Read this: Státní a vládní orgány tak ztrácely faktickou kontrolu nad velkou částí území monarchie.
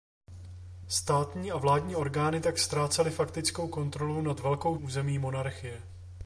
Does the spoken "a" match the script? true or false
true